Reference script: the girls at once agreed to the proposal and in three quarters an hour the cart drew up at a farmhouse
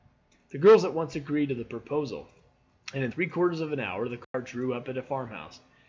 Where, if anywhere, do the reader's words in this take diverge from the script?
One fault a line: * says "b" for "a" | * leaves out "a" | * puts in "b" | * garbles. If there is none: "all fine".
* puts in "of"